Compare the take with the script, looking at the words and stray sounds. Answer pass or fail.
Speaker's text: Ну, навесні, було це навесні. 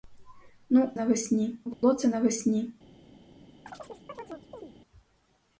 fail